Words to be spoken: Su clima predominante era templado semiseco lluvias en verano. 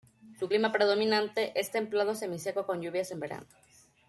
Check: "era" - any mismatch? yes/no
yes